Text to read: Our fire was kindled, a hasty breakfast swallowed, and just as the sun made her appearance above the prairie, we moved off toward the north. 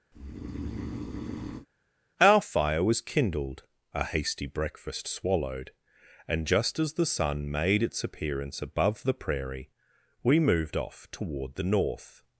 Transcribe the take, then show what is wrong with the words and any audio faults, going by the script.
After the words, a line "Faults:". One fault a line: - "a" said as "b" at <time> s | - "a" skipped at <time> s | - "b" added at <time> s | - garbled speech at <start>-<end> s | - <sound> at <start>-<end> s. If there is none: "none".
Our fire was kindled, a hasty breakfast swallowed, and just as the sun made its appearance above the prairie, we moved off toward the north.
Faults:
- breath at 0.1-1.7 s
- "her" said as "its" at 7.8 s